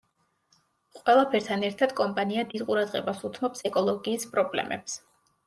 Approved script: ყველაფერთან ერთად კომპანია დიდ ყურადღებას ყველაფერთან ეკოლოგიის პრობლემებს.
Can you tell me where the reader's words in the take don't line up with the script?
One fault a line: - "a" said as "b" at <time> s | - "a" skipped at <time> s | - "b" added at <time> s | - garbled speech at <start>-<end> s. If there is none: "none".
- "ყველაფერთან" said as "უთმობს" at 3.3 s